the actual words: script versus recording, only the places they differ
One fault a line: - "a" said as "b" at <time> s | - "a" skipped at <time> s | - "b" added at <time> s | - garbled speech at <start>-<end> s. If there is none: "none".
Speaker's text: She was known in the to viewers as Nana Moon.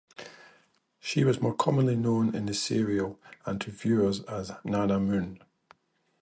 - "more commonly" added at 1.4 s
- "serial and" added at 2.5 s